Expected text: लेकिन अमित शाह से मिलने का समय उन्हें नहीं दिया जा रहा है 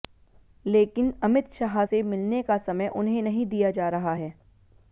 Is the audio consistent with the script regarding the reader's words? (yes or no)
yes